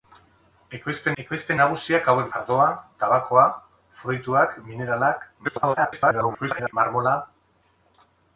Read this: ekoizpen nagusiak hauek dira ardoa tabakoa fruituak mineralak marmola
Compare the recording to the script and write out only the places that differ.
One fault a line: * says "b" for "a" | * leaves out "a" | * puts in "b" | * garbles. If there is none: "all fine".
* puts in "ekoizpen"
* leaves out "dira"
* garbles